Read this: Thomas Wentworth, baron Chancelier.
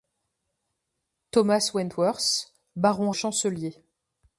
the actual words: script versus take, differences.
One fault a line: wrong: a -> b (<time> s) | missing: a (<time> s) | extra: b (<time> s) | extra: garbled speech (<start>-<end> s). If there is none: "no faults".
no faults